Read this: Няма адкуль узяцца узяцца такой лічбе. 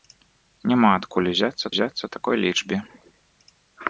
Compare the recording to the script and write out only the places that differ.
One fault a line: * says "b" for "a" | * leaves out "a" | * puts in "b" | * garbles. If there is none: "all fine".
all fine